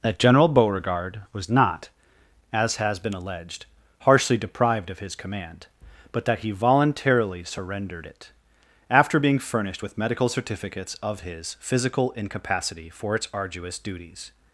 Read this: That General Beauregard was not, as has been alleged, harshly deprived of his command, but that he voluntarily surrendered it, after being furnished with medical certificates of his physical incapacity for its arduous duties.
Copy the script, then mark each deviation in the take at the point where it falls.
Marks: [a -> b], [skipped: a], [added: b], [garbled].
That General Beauregard was not, as has been alleged, harshly deprived of his command, but that he voluntarily surrendered it, after being furnished with medical certificates of his physical incapacity for its arduous duties.